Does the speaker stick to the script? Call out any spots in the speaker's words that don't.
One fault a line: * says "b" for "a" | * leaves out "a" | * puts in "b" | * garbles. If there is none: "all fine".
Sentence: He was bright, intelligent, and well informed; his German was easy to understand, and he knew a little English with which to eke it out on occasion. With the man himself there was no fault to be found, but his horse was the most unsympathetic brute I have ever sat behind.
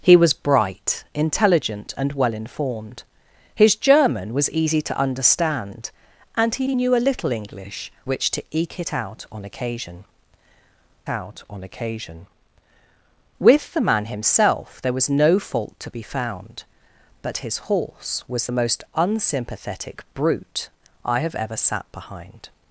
* puts in "he"
* leaves out "with"
* puts in "out on occasion"